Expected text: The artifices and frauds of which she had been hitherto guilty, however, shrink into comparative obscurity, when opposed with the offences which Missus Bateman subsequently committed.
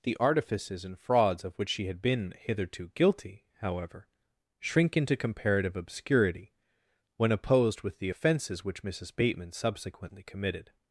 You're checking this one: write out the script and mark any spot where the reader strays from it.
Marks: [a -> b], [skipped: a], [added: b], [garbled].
The artifices and frauds of which she had been hitherto guilty, however, shrink into comparative obscurity, when opposed with the offences which Missus Bateman subsequently committed.